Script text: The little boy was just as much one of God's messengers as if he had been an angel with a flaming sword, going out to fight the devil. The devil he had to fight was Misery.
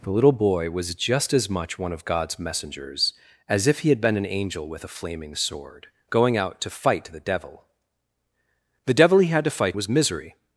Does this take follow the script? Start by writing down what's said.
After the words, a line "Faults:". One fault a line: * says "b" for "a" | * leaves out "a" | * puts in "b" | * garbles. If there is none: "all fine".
The little boy was just as much one of God's messengers as if he had been an angel with a flaming sword, going out to fight the devil. The devil he had to fight was Misery.
Faults:
all fine